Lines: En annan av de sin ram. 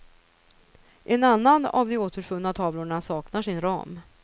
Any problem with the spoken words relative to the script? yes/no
yes